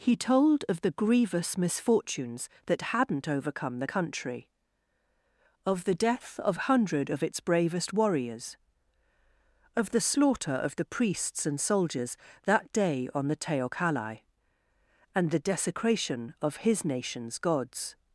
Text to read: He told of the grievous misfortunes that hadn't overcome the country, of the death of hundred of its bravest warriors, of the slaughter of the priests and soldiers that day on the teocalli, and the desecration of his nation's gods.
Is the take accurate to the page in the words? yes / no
yes